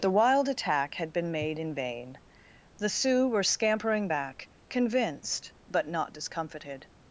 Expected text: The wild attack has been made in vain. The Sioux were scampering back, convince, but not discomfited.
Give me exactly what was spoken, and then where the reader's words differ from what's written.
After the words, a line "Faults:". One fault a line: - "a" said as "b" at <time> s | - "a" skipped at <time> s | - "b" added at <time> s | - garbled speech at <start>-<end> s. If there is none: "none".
The wild attack had been made in vain. The Sioux were scampering back, convinced, but not discomfited.
Faults:
- "has" said as "had" at 0.9 s
- "convince" said as "convinced" at 4.7 s